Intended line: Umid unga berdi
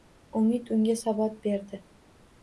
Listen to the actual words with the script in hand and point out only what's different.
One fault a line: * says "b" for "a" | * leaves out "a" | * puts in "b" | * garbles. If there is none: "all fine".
* puts in "sabot"